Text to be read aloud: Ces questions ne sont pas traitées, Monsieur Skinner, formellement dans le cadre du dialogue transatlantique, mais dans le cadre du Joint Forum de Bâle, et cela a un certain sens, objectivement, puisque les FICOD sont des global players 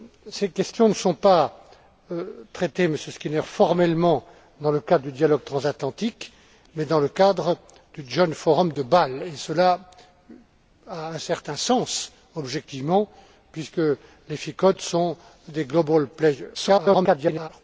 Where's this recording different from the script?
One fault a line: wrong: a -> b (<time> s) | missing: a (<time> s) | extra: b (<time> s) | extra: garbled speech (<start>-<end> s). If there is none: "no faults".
extra: garbled speech (16.5-17.5 s)